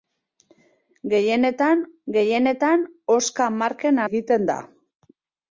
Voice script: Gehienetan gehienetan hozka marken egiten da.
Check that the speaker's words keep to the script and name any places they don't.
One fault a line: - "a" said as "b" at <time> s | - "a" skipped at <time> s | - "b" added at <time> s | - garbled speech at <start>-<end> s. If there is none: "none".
none